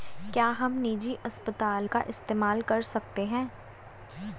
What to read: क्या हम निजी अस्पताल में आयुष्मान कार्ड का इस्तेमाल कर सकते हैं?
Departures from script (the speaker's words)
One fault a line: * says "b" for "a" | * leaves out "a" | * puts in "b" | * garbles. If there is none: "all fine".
* leaves out "में आयुष्मान कार्ड"